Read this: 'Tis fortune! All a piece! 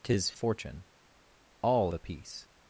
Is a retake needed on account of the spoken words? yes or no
no